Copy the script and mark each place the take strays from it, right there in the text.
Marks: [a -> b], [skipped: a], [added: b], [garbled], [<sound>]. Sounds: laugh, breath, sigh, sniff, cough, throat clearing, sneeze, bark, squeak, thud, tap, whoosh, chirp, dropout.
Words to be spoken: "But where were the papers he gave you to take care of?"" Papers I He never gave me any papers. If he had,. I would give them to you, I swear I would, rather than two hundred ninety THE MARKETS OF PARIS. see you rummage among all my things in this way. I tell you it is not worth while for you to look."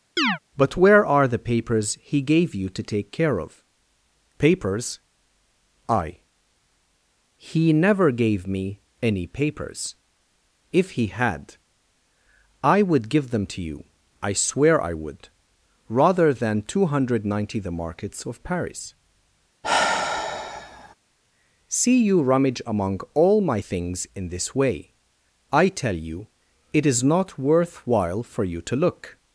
[chirp] "But where [were -> are] the papers he gave you to take care of?"" Papers I He never gave me any papers. If he had,. I would give them to you, I swear I would, rather than two hundred ninety THE MARKETS OF PARIS. [sigh] see you rummage among all my things in this way. I tell you it is not worth while for you to look."